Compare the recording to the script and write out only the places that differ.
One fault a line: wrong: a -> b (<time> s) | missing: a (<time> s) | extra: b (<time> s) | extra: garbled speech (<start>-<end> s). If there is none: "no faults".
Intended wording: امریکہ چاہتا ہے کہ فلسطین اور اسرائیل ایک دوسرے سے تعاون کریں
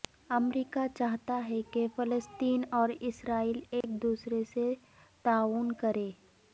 no faults